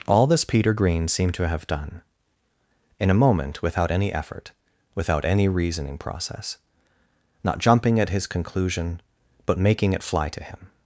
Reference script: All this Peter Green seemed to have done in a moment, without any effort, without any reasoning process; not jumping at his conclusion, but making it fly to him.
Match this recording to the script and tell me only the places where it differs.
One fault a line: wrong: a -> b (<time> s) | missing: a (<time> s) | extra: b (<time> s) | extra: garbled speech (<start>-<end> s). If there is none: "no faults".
no faults